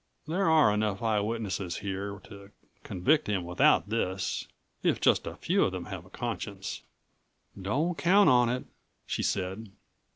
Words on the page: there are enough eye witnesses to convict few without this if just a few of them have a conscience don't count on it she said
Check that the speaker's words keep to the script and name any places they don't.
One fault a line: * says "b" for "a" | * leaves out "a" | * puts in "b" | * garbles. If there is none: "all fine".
* puts in "here"
* says "him" for "few"